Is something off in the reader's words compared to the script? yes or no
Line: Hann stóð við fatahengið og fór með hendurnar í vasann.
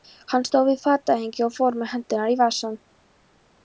no